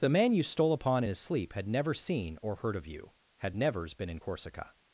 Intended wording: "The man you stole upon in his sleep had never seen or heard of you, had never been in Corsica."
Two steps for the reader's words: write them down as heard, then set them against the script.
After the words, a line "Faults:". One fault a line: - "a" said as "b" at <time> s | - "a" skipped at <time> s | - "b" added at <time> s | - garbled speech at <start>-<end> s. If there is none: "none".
"The man you stole upon in his sleep had never seen or heard of you, had nevers been in Corsica."
Faults:
- "never" said as "nevers" at 3.5 s